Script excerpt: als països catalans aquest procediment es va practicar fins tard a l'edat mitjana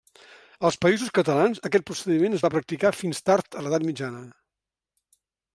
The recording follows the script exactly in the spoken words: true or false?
true